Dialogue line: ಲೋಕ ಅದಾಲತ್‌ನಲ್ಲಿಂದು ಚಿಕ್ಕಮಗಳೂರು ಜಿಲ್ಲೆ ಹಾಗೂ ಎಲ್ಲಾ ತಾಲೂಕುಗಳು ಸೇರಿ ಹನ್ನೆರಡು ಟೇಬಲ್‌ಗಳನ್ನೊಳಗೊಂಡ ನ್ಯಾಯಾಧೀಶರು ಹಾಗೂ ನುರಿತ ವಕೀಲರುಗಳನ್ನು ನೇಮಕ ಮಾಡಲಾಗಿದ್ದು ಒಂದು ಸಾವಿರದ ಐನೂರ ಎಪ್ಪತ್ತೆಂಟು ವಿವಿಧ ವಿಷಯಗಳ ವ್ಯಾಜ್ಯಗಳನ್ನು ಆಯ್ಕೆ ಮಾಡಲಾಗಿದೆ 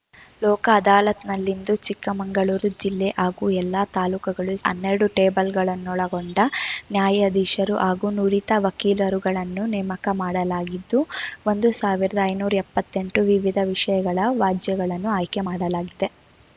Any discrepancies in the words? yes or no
yes